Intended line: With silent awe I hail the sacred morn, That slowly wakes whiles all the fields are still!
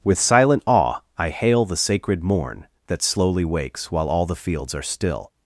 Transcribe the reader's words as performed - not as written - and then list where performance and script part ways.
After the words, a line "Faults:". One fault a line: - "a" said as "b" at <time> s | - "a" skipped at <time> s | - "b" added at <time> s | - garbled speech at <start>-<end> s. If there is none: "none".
With silent awe I hail the sacred morn, That slowly wakes while all the fields are still!
Faults:
- "whiles" said as "while" at 3.9 s